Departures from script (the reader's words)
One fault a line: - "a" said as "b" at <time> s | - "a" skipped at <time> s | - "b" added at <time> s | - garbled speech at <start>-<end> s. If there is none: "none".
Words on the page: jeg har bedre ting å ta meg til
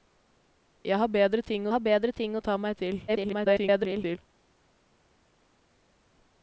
- "har bedre ting" added at 1.7 s
- garbled speech at 3.1-4.2 s